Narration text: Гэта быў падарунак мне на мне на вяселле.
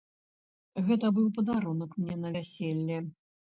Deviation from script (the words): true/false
true